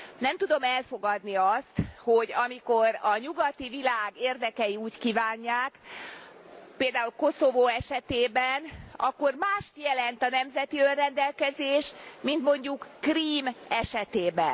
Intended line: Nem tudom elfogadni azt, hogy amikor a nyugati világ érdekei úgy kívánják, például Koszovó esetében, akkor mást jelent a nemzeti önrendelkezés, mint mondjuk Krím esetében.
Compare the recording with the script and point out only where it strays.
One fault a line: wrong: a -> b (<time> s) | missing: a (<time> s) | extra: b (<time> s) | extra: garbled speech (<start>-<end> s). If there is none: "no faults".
no faults